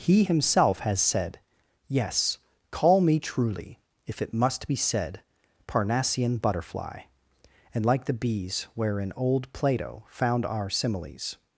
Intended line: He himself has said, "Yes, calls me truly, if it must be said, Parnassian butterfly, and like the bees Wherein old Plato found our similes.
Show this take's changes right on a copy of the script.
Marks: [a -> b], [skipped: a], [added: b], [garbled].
He himself has said, "Yes, [calls -> call] me truly, if it must be said, Parnassian butterfly, and like the bees Wherein old Plato found our similes.